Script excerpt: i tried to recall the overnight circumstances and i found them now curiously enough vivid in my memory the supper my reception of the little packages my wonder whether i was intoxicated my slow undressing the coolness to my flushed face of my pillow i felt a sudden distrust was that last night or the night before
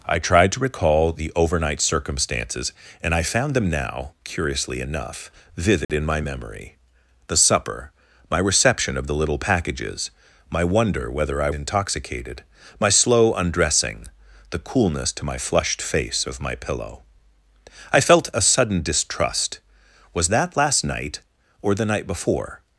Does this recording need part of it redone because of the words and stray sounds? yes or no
yes